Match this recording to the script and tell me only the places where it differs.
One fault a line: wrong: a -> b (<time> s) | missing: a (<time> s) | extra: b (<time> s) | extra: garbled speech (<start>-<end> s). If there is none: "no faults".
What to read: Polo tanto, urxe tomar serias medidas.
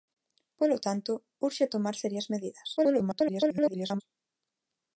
extra: garbled speech (2.8-4.0 s)